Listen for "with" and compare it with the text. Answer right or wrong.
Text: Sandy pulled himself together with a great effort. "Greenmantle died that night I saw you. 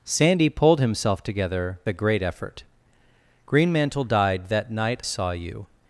wrong